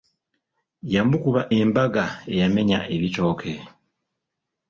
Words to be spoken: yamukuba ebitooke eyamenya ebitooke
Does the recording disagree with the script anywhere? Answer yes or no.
yes